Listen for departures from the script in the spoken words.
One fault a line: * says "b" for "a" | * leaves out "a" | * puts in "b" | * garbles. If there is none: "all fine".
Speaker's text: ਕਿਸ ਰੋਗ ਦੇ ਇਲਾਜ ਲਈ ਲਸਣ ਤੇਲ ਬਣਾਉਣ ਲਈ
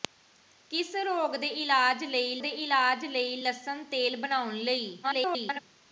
* puts in "ਦੇ ਇਲਾਜ ਲਈ"
* garbles